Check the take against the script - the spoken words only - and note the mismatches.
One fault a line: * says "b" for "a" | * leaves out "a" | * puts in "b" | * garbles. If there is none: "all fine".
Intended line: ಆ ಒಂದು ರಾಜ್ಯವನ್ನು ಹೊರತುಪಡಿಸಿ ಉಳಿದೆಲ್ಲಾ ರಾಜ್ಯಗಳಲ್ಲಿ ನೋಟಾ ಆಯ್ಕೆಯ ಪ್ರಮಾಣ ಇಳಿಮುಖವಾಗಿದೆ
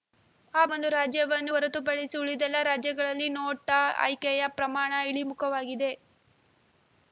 all fine